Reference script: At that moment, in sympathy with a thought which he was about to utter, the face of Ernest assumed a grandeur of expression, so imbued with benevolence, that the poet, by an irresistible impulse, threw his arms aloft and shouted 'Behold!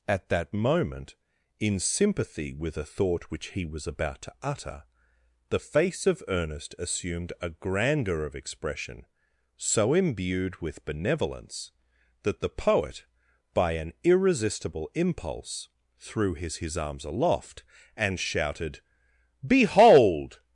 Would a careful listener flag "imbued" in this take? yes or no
no